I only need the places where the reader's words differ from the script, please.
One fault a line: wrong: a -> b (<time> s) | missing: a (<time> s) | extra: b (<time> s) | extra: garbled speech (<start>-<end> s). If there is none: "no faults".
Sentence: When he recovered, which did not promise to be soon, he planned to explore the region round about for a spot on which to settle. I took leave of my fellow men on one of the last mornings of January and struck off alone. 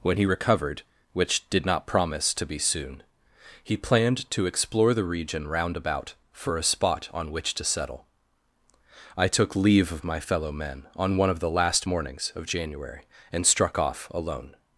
no faults